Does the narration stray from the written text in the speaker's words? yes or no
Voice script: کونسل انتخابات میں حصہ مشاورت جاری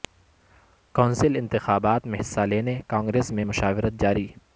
yes